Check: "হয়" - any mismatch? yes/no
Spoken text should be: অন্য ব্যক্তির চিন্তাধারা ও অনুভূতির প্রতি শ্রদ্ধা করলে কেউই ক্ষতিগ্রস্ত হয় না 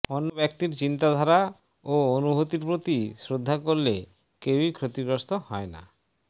no